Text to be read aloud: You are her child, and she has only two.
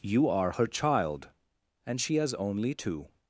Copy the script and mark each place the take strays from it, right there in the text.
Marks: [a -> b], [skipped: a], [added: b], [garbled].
You are her child, and she has only two.